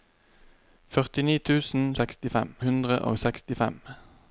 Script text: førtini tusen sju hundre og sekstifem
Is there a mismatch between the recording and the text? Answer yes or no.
yes